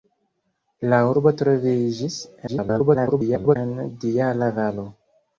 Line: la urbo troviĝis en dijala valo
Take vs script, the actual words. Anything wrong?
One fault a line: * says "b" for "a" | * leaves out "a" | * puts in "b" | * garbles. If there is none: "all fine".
* garbles